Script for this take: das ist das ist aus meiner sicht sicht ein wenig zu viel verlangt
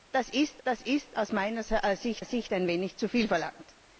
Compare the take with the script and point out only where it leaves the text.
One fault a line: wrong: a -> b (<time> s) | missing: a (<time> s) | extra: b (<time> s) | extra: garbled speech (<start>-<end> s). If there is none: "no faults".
no faults